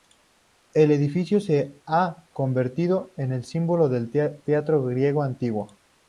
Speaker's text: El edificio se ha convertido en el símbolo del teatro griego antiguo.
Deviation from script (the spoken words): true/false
false